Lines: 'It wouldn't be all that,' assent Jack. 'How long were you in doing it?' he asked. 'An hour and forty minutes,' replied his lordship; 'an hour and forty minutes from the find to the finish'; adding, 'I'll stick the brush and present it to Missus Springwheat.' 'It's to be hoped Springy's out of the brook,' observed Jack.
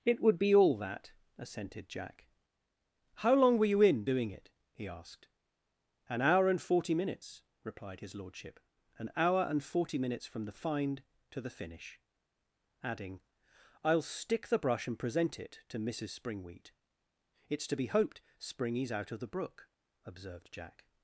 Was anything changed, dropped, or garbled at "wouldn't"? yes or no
yes